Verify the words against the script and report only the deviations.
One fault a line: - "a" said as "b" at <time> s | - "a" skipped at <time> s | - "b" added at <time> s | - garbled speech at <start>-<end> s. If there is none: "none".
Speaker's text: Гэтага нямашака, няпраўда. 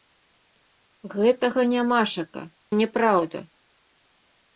none